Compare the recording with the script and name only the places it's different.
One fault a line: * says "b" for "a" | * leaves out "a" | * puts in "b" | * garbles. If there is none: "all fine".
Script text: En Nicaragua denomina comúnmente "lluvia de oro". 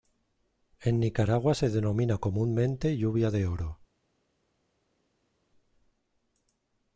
* puts in "se"